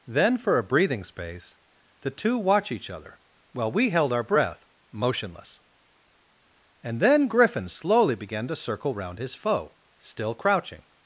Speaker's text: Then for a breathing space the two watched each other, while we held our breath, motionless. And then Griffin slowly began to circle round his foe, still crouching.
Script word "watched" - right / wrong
wrong